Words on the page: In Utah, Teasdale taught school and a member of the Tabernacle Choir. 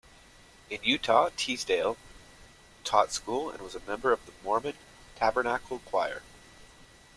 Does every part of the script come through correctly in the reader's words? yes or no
no